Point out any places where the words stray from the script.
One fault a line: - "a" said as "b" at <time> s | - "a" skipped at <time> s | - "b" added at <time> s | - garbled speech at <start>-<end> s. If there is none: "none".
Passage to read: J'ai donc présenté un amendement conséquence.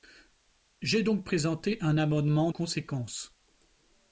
none